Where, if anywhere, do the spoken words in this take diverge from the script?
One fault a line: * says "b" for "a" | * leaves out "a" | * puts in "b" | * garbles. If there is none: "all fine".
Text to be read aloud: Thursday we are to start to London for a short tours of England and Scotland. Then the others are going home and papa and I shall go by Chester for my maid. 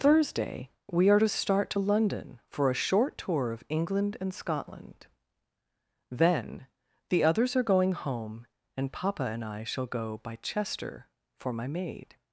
* says "tour" for "tours"